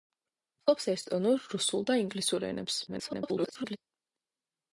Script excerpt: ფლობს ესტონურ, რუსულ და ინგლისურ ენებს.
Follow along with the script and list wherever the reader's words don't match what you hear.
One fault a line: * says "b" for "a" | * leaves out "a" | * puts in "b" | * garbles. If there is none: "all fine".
* garbles